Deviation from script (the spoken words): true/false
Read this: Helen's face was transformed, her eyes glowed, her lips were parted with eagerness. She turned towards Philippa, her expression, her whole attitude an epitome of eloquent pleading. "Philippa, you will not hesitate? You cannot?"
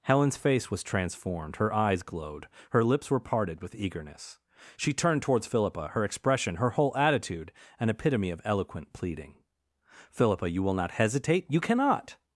false